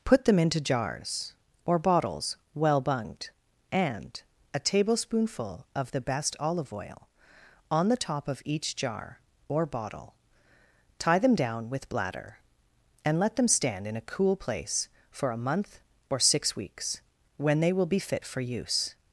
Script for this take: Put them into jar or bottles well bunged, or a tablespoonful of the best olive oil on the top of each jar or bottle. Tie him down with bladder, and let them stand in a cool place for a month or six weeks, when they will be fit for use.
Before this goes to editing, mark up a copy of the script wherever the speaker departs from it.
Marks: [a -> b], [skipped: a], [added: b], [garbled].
Put them into [jar -> jars] or bottles well bunged, [or -> and] a tablespoonful of the best olive oil on the top of each jar or bottle. Tie [him -> them] down with bladder, and let them stand in a cool place for a month or six weeks, when they will be fit for use.